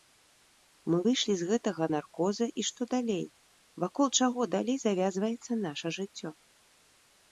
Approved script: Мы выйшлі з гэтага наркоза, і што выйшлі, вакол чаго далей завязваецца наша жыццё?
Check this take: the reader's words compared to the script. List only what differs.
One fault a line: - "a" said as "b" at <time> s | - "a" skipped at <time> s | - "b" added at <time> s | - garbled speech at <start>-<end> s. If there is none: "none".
- "выйшлі" said as "далей" at 3.0 s